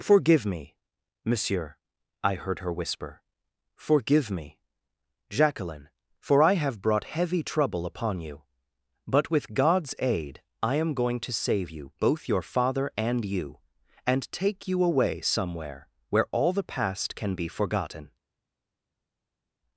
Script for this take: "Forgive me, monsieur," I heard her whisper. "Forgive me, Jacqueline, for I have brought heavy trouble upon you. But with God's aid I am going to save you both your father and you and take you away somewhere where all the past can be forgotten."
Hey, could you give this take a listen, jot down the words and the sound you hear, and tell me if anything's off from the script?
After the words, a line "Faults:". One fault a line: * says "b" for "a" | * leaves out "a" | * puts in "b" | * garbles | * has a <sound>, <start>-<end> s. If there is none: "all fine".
"Forgive me, monsieur," I heard her whisper. "Forgive me, Jacqueline, for I have brought heavy trouble upon you. But with God's aid I am going to save you both your father and you and take you away somewhere where all the past can be forgotten."
Faults:
all fine